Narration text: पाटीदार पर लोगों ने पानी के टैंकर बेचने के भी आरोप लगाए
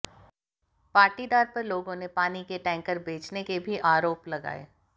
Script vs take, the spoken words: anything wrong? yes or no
no